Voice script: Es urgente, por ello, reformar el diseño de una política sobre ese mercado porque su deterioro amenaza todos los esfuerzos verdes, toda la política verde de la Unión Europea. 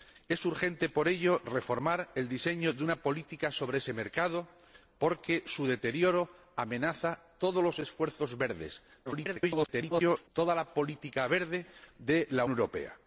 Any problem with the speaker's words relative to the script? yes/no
yes